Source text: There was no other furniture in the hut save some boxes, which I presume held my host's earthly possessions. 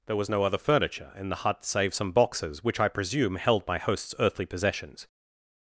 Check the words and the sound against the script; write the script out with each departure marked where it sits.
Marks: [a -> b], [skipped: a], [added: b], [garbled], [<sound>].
There was no other furniture in the hut save some boxes, which I presume held my host's earthly possessions.